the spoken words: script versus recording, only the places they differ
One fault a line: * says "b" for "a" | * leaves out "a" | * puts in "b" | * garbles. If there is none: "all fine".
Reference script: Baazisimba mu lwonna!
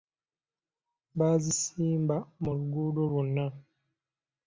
* puts in "luguudo"